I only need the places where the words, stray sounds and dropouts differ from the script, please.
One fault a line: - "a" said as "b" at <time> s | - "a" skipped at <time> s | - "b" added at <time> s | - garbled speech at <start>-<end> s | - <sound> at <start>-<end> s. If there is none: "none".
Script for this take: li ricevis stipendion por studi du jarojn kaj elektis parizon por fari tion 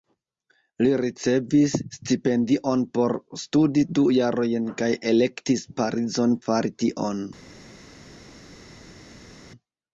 - "por" skipped at 6.4 s